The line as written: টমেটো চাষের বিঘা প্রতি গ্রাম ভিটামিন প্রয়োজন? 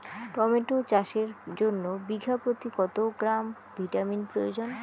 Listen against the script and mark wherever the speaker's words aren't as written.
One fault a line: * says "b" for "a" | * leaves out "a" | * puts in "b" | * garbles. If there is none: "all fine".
* puts in "জন্য"
* puts in "কত"